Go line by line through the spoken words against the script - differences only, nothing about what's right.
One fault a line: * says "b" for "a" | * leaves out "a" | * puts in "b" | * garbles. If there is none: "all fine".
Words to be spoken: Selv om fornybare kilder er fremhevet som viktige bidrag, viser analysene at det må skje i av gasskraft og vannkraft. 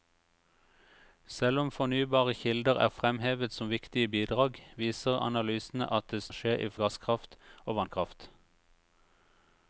all fine